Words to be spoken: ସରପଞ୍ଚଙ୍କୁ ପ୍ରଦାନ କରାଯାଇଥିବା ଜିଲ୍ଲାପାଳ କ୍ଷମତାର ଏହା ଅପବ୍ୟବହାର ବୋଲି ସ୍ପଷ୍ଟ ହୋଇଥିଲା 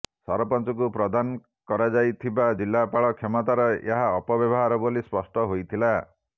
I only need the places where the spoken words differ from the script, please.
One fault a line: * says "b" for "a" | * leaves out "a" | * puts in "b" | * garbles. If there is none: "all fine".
all fine